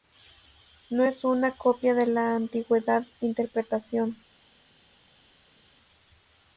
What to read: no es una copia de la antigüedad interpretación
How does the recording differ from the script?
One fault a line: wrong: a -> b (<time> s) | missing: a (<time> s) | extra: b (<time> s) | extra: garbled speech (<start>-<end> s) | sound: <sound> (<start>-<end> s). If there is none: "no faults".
no faults